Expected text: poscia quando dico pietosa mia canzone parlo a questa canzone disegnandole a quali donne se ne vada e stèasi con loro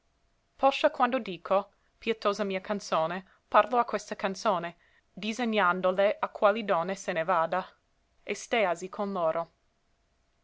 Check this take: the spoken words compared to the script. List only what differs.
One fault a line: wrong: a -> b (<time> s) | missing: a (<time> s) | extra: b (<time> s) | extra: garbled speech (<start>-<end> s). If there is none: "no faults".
no faults